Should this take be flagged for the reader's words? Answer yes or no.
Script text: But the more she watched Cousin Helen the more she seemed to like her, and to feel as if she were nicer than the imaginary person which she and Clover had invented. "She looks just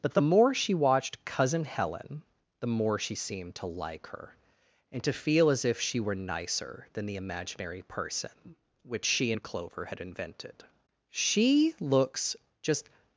no